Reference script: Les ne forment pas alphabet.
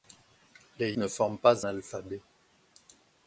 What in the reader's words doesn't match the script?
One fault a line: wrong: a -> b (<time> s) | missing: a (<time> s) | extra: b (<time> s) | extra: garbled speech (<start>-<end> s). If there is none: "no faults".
no faults